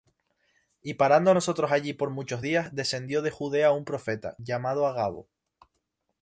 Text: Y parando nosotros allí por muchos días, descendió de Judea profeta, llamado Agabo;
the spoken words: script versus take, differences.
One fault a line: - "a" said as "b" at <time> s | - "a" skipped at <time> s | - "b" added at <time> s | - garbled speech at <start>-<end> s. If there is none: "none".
- "un" added at 3.7 s